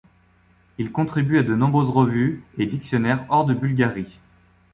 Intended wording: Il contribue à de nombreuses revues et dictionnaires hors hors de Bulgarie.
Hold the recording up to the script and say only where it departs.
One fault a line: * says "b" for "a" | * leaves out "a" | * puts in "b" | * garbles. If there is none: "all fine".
* leaves out "hors"